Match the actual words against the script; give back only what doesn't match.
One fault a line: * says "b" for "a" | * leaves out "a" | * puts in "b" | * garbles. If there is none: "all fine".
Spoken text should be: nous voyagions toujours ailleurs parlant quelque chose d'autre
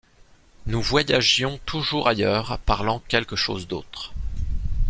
all fine